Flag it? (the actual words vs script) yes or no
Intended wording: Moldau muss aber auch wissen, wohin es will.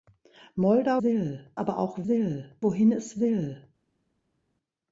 yes